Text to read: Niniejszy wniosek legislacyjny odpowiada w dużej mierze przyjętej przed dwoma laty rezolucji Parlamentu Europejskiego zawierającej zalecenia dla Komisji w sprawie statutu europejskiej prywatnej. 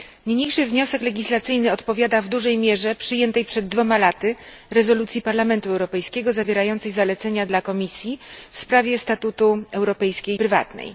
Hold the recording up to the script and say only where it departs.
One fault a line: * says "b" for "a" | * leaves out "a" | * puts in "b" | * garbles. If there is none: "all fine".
all fine